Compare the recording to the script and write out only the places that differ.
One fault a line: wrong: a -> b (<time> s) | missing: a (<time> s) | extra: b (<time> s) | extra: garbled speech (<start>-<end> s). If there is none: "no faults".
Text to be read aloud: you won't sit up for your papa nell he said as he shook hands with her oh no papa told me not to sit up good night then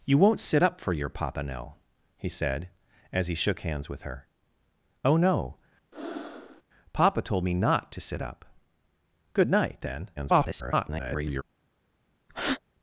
extra: garbled speech (10.2-11.4 s)